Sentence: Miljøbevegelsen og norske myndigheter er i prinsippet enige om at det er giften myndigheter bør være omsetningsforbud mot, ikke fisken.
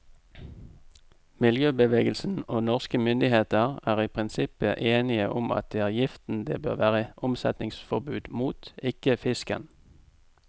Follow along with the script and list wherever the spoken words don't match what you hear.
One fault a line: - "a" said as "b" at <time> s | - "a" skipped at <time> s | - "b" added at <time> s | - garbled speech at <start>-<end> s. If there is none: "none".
- "myndigheter" said as "det" at 6.5 s